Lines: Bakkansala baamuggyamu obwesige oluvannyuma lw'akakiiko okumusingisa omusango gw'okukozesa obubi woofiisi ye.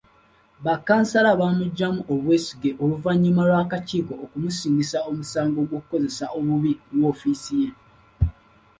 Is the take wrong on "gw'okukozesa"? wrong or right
right